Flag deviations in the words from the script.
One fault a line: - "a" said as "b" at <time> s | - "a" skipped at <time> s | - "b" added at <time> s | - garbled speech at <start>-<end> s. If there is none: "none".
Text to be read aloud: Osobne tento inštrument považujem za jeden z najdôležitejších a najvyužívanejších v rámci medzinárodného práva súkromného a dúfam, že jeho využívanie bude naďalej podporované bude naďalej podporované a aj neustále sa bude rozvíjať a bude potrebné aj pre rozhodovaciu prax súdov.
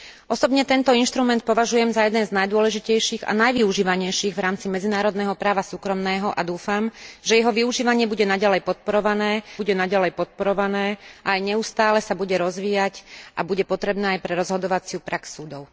none